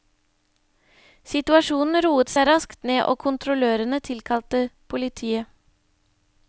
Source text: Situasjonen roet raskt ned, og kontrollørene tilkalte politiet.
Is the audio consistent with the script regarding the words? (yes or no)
no